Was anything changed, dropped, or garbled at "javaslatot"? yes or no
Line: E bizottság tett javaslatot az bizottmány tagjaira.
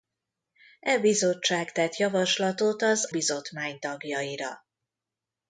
no